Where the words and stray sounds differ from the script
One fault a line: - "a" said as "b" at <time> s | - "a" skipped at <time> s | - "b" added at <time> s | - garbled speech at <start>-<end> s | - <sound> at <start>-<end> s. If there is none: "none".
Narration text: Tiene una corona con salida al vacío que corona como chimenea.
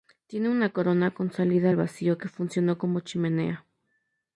- "corona" said as "funcionó" at 2.3 s